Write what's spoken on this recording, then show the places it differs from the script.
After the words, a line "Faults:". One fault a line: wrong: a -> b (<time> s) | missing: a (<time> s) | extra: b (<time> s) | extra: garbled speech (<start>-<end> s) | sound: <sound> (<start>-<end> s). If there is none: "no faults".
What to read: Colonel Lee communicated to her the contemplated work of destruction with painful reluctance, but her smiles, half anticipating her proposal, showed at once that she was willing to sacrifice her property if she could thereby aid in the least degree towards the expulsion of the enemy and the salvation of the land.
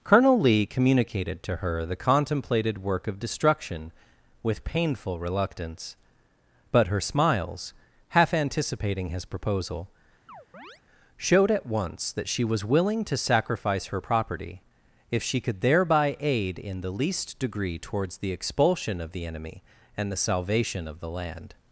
Colonel Lee communicated to her the contemplated work of destruction with painful reluctance, but her smiles, half anticipating his proposal, showed at once that she was willing to sacrifice her property if she could thereby aid in the least degree towards the expulsion of the enemy and the salvation of the land.
Faults:
wrong: her -> his (9.1 s)
sound: chirp (10.3-10.8 s)